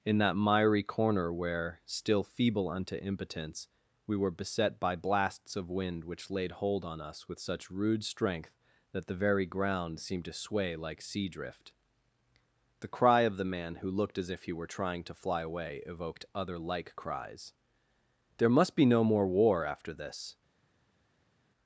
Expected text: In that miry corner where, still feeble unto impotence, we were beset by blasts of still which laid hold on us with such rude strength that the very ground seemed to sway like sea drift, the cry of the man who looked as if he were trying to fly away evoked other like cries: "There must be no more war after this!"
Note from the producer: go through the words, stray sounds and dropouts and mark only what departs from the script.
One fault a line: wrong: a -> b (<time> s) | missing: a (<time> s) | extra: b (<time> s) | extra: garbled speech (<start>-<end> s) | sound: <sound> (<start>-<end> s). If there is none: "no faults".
wrong: still -> wind (5.7 s)